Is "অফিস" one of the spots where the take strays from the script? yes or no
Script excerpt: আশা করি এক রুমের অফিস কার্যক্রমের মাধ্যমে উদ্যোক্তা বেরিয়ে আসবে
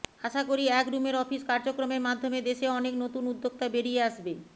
no